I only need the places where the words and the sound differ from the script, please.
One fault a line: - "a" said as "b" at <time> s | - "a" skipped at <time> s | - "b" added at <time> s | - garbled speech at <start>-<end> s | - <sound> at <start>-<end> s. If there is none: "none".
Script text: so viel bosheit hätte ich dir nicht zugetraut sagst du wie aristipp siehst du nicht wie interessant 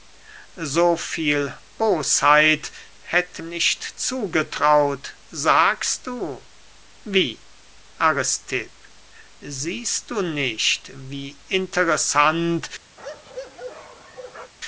- "ich dir" skipped at 3.4 s
- bark at 13.0-14.5 s